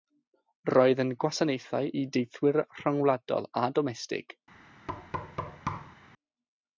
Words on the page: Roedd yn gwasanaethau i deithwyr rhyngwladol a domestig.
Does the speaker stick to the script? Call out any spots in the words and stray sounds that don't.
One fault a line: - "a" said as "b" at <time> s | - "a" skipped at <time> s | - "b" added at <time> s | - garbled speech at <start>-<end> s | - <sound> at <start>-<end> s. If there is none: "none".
- thud at 4.9-6.0 s